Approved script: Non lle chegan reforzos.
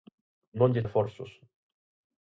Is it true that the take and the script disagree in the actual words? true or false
true